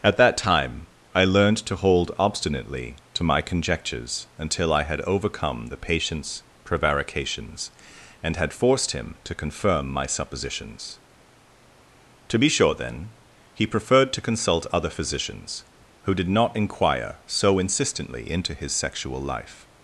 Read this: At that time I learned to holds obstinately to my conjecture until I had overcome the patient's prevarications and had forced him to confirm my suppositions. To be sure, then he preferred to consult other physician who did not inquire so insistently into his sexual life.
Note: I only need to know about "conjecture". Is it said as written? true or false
false